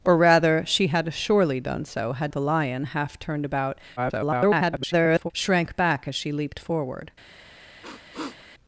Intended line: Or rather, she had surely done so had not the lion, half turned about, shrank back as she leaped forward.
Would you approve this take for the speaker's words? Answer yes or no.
no